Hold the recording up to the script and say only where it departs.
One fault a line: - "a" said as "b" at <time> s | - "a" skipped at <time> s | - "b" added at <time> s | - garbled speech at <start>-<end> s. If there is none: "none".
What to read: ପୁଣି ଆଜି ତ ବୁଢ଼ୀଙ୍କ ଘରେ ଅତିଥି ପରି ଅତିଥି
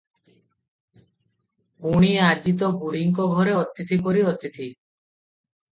none